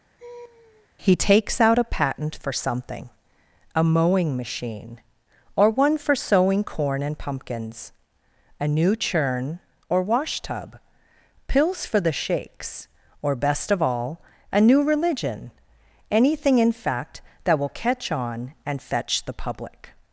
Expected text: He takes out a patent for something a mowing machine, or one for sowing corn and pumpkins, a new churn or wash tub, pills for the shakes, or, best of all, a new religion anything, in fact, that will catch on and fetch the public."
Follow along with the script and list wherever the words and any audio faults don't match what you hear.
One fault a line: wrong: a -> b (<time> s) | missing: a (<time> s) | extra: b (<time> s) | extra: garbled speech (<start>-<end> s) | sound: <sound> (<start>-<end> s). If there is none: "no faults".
sound: laugh (0.2-0.9 s)